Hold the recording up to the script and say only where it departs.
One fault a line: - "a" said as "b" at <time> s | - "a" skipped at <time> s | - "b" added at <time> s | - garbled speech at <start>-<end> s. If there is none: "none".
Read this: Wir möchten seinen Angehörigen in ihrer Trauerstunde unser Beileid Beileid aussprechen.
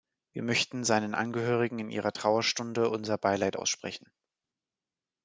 - "Beileid" skipped at 3.6 s